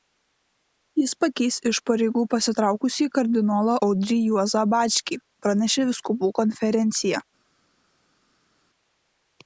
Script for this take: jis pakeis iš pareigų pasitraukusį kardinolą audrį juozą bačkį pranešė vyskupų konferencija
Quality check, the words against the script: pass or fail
pass